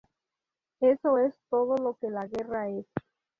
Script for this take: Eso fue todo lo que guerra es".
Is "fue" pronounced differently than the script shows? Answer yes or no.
yes